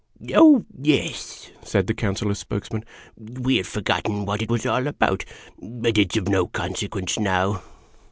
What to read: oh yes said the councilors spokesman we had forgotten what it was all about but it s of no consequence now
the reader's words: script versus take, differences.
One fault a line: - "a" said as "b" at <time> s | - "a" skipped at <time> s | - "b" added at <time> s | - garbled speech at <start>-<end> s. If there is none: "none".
none